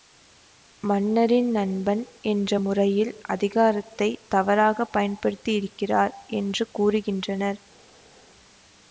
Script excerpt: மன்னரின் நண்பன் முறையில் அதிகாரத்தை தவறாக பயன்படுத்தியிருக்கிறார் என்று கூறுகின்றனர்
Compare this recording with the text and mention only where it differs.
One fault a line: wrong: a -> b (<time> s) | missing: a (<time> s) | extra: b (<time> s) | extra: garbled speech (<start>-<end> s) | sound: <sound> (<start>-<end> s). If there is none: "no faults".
extra: என்ற (2.2 s)